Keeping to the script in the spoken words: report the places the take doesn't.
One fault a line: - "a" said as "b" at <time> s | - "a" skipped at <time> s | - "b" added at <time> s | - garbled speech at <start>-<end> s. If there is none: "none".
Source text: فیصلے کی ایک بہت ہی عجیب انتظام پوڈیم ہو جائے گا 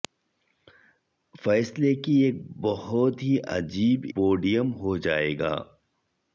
- "انتظام" skipped at 4.0 s